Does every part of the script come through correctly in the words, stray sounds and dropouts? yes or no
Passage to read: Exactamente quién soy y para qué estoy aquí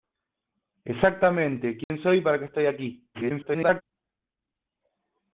no